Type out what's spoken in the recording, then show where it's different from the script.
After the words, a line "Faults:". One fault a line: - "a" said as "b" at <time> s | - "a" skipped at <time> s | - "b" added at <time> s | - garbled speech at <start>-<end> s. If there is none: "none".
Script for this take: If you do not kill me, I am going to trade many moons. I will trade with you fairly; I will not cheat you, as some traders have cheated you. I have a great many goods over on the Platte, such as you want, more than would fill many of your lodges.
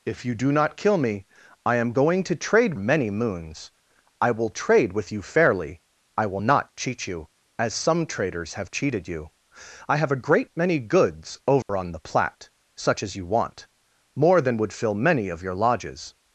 If you do not kill me, I am going to trade many moons. I will trade with you fairly; I will not cheat you, as some traders have cheated you. I have a great many goods over on the Platte, such as you want, more than would fill many of your lodges.
Faults:
none